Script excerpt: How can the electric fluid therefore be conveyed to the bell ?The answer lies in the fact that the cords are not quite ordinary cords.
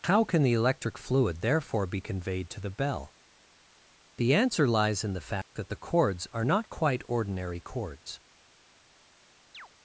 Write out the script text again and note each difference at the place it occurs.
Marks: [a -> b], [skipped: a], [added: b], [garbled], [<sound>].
How can the electric fluid therefore be conveyed to the bell ?The answer lies in the fact [dropout] that the cords are not quite ordinary cords. [chirp]